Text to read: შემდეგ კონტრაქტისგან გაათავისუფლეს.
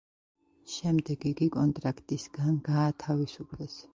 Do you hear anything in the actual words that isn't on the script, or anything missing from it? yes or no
yes